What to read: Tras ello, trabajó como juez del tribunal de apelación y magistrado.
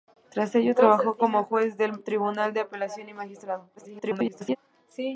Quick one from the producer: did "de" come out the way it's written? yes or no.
yes